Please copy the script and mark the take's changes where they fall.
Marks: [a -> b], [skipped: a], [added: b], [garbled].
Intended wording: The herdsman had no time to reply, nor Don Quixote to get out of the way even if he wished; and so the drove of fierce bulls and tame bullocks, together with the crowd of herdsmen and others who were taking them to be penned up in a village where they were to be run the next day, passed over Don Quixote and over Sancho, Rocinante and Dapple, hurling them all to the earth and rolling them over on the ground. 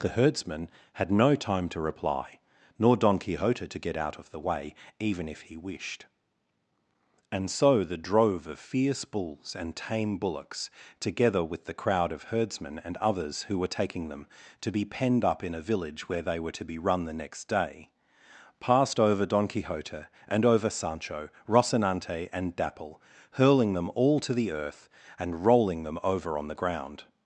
The herdsman had no time to reply, nor Don Quixote to get out of the way even if he wished; and so the drove of fierce bulls and tame bullocks, together with the crowd of herdsmen and others who were taking them to be penned up in a village where they were to be run the next day, passed over Don Quixote and over Sancho, Rocinante and Dapple, hurling them all to the earth and rolling them over on the ground.